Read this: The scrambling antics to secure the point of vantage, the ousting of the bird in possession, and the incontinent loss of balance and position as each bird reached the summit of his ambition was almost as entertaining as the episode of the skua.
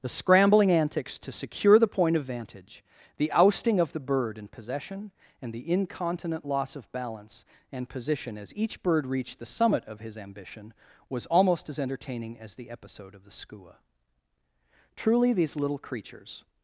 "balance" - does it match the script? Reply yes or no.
yes